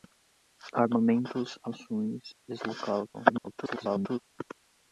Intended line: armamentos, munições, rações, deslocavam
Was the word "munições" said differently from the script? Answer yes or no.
yes